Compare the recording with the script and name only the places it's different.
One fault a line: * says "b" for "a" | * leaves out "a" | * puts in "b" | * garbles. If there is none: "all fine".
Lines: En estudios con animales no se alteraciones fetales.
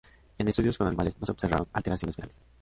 * puts in "observaron"